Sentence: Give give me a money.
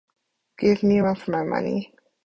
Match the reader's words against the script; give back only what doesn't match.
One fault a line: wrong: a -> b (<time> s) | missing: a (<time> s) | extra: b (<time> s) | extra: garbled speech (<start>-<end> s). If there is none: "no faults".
missing: give (0.8 s)
extra: run for my (1.0 s)